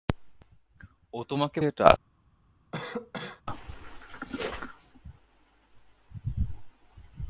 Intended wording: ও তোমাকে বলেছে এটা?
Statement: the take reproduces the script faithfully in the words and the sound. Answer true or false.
false